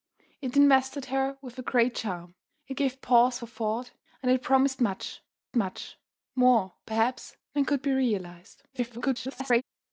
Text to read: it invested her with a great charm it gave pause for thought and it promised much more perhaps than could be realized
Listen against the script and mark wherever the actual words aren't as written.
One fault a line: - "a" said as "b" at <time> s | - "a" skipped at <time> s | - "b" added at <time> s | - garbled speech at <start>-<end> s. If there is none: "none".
- "much" added at 5.5 s
- garbled speech at 8.7-9.6 s